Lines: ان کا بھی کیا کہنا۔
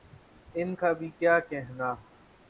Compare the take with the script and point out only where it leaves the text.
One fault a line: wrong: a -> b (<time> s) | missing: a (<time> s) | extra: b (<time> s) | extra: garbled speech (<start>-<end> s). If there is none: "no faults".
no faults